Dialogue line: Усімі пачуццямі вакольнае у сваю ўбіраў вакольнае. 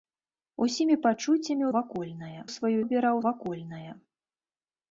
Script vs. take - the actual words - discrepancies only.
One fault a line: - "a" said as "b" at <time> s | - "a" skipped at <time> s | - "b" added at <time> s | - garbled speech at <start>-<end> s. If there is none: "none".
none